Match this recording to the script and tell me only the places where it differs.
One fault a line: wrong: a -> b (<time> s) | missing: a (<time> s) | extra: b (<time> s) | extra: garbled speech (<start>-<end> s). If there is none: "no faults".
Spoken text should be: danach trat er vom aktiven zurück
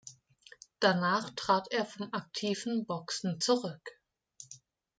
extra: boxen (2.9 s)